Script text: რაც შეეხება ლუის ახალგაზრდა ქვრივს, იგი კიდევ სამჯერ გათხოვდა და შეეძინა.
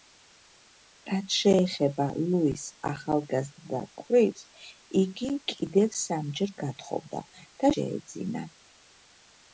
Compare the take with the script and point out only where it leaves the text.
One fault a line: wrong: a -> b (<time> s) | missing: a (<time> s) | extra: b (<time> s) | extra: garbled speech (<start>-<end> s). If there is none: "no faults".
no faults